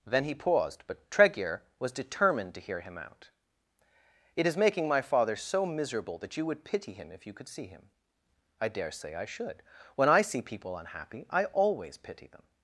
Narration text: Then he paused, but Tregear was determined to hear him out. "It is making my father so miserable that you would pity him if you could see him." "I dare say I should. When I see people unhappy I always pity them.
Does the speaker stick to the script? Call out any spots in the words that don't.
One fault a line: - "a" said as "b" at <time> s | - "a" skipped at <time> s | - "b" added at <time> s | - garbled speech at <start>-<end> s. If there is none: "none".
none